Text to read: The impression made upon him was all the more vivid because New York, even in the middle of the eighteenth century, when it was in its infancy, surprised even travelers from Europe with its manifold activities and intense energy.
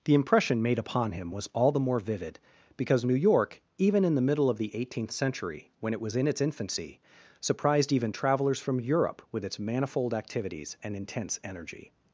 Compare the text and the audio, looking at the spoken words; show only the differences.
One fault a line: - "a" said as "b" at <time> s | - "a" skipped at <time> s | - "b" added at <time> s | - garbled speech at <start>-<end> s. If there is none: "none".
none